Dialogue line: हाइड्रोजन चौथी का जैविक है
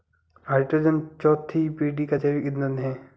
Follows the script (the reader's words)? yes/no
no